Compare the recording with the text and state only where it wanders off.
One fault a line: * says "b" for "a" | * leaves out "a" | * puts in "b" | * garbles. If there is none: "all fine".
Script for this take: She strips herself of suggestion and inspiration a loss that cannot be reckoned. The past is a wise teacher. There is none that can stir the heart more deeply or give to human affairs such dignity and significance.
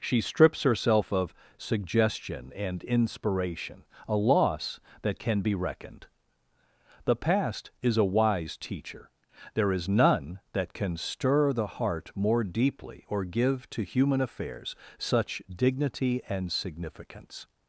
* says "can" for "cannot"